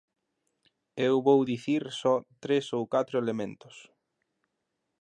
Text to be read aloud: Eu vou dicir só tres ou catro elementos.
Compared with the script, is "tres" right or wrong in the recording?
right